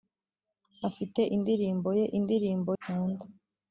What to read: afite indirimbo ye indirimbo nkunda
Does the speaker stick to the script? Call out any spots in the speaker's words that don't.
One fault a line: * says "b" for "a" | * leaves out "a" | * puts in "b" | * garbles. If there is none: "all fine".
all fine